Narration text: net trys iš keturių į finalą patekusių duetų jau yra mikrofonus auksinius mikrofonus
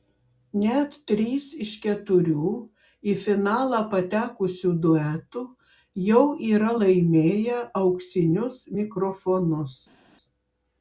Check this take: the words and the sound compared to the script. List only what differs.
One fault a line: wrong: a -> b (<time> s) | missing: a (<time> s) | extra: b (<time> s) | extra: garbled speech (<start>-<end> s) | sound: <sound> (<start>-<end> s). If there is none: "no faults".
wrong: mikrofonus -> laimėję (6.8 s)